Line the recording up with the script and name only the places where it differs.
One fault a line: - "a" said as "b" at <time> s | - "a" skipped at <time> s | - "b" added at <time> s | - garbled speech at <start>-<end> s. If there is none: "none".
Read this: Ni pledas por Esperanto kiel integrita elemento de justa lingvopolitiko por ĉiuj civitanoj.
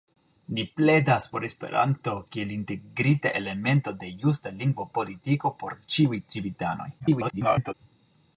- garbled speech at 7.0-7.7 s